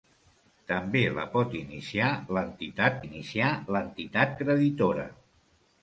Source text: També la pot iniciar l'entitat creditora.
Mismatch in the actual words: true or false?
true